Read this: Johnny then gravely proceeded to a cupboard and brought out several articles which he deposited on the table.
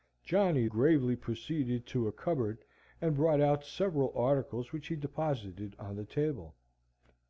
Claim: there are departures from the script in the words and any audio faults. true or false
true